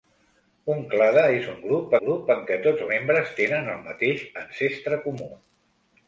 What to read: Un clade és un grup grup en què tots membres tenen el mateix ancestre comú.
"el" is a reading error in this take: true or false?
false